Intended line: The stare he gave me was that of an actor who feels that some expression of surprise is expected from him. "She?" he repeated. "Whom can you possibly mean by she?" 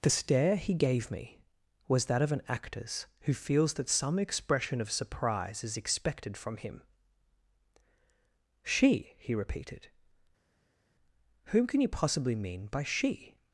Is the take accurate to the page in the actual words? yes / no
no